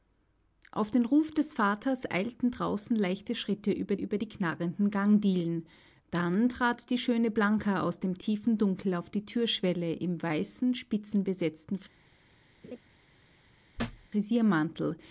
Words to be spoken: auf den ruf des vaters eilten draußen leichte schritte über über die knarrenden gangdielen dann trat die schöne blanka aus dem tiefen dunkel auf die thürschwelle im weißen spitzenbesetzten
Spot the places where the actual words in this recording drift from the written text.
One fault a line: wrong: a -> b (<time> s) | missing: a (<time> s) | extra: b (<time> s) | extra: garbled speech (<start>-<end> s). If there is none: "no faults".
no faults